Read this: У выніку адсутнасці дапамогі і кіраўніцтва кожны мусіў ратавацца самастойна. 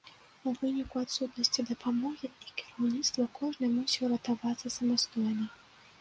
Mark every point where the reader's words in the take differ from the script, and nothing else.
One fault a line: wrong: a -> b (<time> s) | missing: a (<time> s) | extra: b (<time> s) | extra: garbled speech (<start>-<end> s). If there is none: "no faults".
no faults